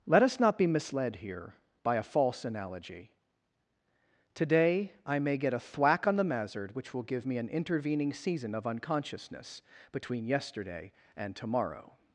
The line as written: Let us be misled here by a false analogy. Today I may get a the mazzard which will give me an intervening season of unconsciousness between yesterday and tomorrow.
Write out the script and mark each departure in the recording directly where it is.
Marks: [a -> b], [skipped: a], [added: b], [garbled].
Let us [added: not] be misled here by a false analogy. Today I may get a [added: thwack on] the mazzard which will give me an intervening season of unconsciousness between yesterday and tomorrow.